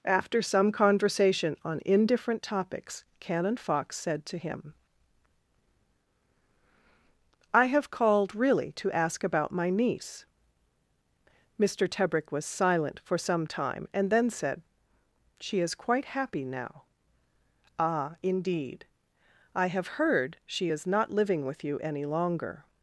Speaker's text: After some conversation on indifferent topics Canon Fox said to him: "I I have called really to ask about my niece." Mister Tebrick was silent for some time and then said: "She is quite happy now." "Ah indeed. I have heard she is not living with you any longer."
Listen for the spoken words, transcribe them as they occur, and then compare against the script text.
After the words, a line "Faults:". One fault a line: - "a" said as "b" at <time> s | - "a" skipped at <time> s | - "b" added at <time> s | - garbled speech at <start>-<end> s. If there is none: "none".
After some conversation on indifferent topics Canon Fox said to him: "I have called really to ask about my niece." Mister Tebrick was silent for some time and then said: "She is quite happy now." "Ah indeed. I have heard she is not living with you any longer."
Faults:
- "I" skipped at 7.6 s